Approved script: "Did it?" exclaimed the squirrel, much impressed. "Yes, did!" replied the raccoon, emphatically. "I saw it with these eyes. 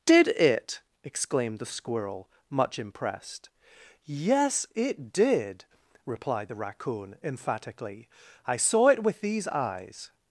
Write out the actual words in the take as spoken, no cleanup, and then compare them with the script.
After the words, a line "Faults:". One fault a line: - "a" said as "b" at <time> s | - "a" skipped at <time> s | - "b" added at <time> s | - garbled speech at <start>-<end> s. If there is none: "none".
"Did it?" exclaimed the squirrel, much impressed. "Yes, it did!" replied the raccoon, emphatically. "I saw it with these eyes.
Faults:
- "it" added at 4.8 s